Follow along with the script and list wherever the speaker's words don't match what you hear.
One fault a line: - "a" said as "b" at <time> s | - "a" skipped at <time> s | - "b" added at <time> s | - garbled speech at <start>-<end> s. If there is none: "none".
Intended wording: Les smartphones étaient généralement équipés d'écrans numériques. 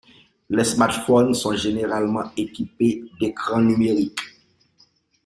- "étaient" said as "sont" at 1.4 s